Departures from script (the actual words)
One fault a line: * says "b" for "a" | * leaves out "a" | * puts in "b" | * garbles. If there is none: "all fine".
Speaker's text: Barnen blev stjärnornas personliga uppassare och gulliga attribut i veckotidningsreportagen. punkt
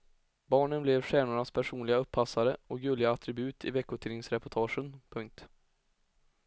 all fine